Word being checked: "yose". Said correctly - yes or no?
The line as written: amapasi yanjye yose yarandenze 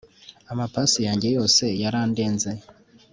yes